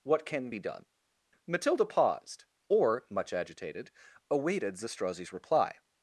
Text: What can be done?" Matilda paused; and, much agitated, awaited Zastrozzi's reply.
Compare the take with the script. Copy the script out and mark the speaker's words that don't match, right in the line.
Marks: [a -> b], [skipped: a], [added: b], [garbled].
What can be done?" Matilda paused; [and, -> or] much agitated, awaited Zastrozzi's reply.